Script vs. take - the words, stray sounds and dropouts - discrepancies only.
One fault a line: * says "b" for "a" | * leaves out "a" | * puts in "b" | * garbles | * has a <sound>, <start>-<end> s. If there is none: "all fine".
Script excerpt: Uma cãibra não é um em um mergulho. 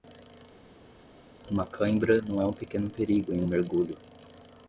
* puts in "pequeno perigo"